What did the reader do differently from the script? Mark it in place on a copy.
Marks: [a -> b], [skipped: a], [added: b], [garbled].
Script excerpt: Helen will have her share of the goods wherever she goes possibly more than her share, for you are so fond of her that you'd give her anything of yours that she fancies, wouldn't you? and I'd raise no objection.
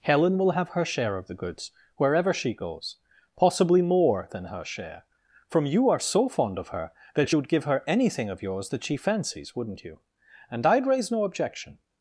Helen will have her share of the goods wherever she goes possibly more than her share, [for -> from] you are so fond of her that you'd give her anything of yours that she fancies, wouldn't you? and I'd raise no objection.